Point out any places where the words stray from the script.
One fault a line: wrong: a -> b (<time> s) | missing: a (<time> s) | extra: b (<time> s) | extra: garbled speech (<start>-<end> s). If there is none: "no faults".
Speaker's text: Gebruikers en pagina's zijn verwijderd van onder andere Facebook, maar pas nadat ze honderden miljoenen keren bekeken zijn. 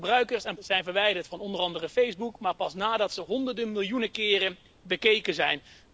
missing: pagina's (0.6 s)